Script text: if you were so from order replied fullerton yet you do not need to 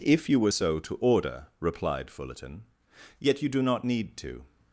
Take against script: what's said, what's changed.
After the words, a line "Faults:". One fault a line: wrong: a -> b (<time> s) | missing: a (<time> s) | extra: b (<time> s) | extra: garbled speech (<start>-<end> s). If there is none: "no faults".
if you were so to order replied fullerton yet you do not need to
Faults:
wrong: from -> to (0.8 s)